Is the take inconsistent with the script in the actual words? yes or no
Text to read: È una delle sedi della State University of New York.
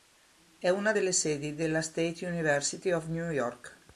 no